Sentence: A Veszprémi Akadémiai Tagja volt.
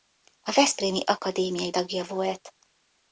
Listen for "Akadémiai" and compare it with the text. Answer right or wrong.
right